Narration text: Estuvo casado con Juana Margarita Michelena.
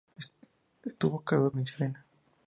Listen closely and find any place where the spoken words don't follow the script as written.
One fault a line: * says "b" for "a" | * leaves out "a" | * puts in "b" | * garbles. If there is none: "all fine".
* leaves out "con Juana Margarita"